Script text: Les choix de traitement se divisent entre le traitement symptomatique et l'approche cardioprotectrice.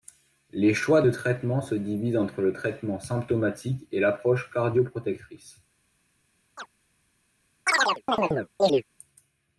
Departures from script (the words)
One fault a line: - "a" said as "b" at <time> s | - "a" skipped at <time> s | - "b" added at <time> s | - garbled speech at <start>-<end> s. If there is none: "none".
none